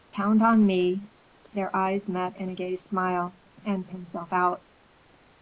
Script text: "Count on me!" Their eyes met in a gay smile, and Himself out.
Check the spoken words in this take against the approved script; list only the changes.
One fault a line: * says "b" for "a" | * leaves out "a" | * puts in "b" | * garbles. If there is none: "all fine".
all fine